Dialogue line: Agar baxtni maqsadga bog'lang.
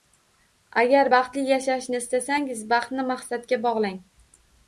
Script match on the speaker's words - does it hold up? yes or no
no